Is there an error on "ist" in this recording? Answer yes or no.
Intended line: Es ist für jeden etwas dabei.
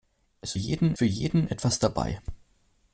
yes